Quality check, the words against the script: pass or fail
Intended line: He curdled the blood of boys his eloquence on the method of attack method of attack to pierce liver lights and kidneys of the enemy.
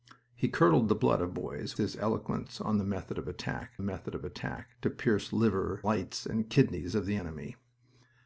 pass